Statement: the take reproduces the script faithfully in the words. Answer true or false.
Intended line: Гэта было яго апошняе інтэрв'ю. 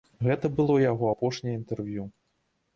true